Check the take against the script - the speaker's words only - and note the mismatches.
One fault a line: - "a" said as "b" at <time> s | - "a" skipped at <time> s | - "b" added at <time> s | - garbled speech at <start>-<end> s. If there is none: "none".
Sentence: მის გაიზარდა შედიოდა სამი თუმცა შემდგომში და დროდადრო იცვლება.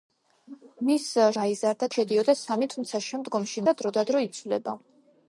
none